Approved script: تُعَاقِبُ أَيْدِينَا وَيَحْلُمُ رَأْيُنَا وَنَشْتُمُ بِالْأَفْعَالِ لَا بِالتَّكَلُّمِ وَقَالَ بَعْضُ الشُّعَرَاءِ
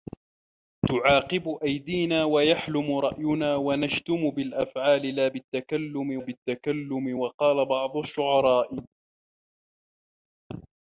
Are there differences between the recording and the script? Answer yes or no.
yes